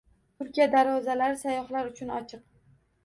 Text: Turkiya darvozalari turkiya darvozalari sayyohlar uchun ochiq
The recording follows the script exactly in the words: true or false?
false